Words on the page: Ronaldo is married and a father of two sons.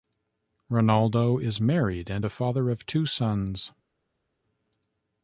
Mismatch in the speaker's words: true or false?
false